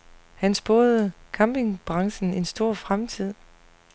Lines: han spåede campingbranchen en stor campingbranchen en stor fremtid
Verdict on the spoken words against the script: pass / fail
fail